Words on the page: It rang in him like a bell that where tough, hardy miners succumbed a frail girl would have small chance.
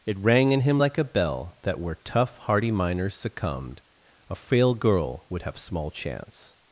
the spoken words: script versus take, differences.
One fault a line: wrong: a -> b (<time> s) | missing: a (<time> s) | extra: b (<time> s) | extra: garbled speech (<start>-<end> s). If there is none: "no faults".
no faults